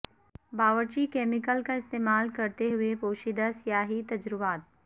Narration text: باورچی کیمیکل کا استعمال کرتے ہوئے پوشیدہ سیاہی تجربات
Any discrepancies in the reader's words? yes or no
no